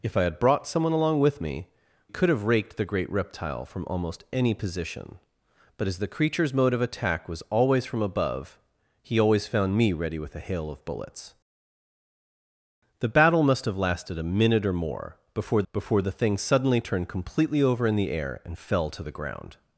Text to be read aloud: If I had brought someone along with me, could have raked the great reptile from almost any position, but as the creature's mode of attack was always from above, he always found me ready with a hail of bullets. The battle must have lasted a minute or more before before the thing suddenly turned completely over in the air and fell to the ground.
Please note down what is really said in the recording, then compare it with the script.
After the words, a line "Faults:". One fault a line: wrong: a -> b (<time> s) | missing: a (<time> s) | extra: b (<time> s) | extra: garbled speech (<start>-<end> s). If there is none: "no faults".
If I had brought someone along with me, could have raked the great reptile from almost any position, but as the creature's mode of attack was always from above, he always found me ready with a hail of bullets. The battle must have lasted a minute or more before before the thing suddenly turned completely over in the air and fell to the ground.
Faults:
no faults